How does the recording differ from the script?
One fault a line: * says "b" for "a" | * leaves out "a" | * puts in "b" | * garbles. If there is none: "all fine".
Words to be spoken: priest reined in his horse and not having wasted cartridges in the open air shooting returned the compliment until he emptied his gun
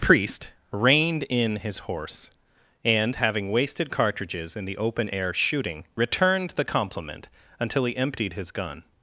* leaves out "not"